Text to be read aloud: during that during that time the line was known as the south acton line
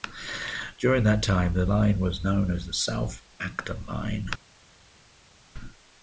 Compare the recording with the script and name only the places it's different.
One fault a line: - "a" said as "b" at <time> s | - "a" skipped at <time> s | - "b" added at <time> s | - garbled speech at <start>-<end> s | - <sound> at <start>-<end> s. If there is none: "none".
- "during that" skipped at 1.2 s